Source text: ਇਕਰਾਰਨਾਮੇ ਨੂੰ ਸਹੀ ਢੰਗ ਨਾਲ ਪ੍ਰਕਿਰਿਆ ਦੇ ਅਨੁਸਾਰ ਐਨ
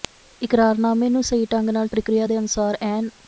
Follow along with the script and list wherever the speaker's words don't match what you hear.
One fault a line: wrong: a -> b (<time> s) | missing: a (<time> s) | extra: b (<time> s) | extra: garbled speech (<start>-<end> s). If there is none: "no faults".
no faults